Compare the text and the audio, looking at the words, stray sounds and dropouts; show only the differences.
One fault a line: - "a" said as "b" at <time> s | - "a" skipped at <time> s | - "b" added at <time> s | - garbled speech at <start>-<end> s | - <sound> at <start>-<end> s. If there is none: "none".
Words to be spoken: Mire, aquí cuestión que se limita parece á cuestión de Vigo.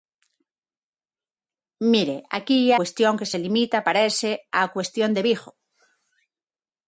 none